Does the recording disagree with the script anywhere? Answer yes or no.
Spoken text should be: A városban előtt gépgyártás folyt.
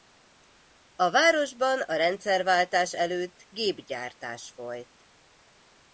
yes